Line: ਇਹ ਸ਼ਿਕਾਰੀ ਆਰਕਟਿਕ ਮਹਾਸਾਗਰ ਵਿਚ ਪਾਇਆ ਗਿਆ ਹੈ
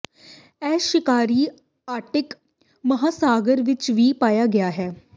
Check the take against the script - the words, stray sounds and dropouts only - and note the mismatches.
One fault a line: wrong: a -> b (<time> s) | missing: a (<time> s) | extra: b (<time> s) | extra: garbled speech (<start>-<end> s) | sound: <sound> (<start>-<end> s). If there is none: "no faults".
extra: ਵੀ (3.9 s)